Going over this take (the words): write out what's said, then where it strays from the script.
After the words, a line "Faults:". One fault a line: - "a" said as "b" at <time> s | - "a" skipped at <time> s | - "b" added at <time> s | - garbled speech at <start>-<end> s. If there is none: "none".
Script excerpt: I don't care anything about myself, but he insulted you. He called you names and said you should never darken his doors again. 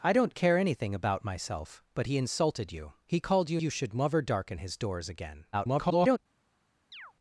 I don't care anything about myself, but he insulted you. He called you you should never darken his doors again. [garbled]
Faults:
- "names and said" skipped at 3.6 s
- garbled speech at 5.5-6.2 s